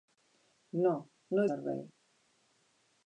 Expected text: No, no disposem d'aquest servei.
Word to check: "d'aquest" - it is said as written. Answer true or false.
false